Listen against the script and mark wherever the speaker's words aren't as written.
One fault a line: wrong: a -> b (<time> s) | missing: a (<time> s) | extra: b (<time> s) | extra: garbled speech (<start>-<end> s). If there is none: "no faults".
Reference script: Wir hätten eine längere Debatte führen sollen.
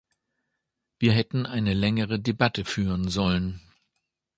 no faults